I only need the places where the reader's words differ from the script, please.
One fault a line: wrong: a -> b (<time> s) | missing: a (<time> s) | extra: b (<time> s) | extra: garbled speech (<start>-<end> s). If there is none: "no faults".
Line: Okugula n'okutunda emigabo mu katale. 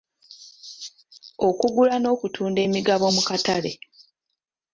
no faults